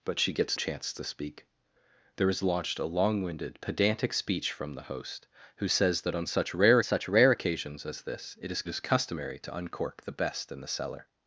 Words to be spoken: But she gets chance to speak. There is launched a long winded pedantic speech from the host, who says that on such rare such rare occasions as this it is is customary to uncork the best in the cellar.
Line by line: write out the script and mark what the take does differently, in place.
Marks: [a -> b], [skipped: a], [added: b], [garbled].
But she gets chance to speak. There is launched a long winded pedantic speech from the host, who says that on such rare such rare occasions as this it is is customary to uncork the best in the cellar.